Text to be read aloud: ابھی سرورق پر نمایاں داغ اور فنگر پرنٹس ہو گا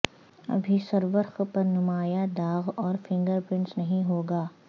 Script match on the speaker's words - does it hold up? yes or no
no